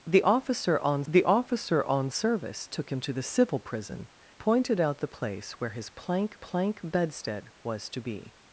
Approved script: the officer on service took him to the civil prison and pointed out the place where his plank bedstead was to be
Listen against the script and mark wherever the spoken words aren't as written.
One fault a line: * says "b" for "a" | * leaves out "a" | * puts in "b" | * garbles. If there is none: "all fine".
* puts in "the officer on"
* leaves out "and"
* puts in "plank"